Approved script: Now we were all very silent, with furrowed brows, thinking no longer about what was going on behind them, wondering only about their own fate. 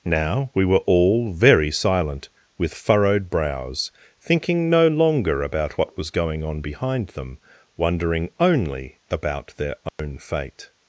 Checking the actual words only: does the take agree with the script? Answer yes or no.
yes